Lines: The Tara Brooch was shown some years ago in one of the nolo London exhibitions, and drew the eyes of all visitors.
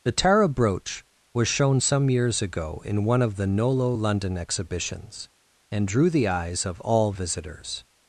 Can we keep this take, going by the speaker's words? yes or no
yes